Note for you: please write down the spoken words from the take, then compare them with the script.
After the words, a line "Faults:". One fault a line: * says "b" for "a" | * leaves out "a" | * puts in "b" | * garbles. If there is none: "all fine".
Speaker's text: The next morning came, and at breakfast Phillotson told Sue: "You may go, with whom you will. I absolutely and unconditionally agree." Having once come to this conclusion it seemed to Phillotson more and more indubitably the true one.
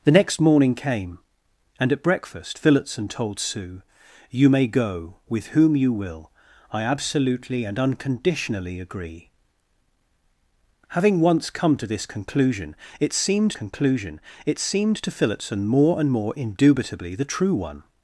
The next morning came, and at breakfast Phillotson told Sue: "You may go, with whom you will. I absolutely and unconditionally agree." Having once come to this conclusion it seemed conclusion it seemed to Phillotson more and more indubitably the true one.
Faults:
* puts in "conclusion it seemed"